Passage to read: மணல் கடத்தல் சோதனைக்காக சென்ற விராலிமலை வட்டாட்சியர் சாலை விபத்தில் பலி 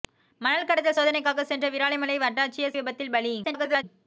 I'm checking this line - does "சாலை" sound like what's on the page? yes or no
no